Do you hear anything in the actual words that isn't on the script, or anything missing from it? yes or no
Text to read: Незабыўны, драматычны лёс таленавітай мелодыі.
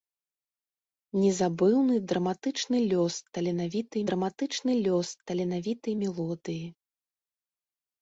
yes